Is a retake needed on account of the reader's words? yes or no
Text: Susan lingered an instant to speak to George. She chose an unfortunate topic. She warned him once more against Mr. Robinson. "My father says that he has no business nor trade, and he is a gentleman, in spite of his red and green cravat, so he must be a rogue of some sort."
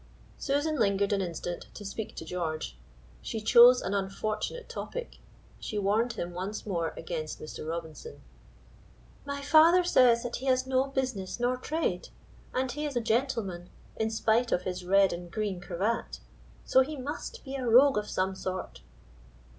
no